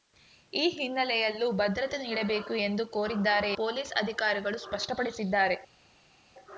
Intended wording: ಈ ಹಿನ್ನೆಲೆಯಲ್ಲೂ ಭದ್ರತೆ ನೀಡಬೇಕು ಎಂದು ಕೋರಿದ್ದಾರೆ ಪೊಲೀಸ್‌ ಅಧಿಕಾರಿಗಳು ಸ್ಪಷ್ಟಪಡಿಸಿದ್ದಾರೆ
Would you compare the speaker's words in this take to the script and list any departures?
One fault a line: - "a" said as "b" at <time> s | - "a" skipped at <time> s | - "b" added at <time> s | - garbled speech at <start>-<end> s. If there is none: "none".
none